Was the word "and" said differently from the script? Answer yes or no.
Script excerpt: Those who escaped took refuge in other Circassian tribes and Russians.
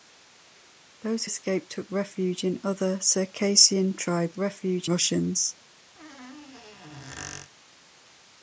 yes